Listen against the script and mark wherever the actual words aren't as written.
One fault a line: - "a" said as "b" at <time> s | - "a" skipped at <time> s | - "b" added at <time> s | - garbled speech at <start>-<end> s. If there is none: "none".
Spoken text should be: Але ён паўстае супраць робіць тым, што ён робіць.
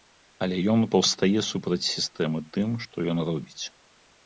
- "робіць" said as "сістэмы" at 1.9 s